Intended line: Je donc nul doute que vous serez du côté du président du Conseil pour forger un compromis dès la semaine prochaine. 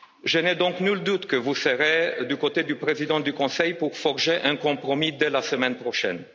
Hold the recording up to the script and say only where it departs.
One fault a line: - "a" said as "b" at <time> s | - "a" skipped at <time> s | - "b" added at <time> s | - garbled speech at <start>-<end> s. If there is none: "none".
- "n'ai" added at 0.4 s